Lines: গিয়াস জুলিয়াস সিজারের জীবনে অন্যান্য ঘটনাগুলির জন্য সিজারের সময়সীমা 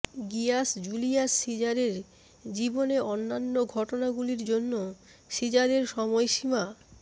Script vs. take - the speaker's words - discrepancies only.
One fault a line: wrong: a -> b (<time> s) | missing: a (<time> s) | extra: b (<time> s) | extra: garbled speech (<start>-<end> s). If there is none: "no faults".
no faults